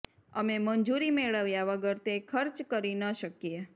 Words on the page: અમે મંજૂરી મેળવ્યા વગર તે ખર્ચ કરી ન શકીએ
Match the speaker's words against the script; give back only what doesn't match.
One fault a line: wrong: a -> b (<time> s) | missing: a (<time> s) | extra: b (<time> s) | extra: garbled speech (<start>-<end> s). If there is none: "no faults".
no faults